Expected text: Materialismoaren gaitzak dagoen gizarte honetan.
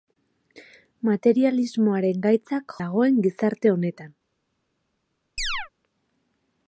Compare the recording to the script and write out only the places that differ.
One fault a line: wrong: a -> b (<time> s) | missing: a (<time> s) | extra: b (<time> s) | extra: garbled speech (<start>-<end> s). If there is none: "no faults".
no faults